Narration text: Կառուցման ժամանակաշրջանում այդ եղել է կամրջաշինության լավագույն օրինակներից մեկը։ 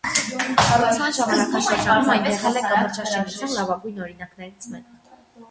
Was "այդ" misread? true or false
true